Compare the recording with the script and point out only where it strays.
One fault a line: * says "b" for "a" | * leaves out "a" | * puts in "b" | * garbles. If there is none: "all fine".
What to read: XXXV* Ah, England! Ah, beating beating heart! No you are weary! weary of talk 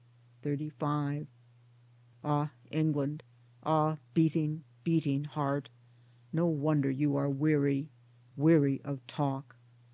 * puts in "wonder"